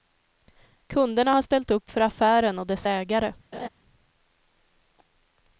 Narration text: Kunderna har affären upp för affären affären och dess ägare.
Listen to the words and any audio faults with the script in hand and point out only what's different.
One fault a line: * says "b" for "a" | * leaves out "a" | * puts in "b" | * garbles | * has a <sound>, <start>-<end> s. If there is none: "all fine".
* says "ställt" for "affären"
* leaves out "affären"
* has a laugh, 3.5-3.7 s